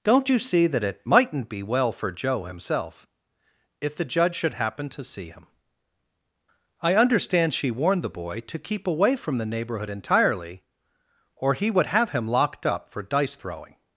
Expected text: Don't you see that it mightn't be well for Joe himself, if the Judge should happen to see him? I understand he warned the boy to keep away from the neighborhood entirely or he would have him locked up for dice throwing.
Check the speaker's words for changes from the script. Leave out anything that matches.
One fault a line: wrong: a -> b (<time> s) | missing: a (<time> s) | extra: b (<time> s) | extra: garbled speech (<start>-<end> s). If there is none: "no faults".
wrong: he -> she (7.5 s)